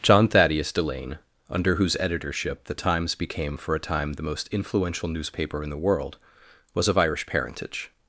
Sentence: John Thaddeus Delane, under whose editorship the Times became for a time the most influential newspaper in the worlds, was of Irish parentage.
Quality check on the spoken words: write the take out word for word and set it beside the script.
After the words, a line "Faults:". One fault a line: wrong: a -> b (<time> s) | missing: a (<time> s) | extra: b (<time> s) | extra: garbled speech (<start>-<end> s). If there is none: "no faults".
John Thaddeus Delane, under whose editorship the Times became for a time the most influential newspaper in the world, was of Irish parentage.
Faults:
wrong: worlds -> world (5.8 s)